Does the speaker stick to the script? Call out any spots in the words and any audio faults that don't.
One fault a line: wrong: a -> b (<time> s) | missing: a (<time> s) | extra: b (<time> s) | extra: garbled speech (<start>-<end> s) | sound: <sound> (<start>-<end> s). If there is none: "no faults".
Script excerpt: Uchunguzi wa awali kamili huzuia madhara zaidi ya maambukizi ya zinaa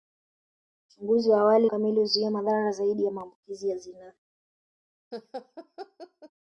sound: laugh (5.1-6.3 s)